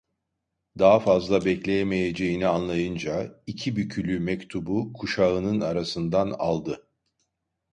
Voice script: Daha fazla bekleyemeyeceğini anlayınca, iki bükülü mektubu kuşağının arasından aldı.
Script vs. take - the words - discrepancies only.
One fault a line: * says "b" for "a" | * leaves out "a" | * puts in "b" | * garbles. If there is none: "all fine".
all fine